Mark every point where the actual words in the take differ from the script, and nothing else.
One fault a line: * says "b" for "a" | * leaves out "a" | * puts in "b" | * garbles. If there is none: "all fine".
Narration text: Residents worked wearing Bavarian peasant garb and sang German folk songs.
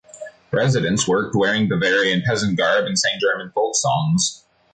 all fine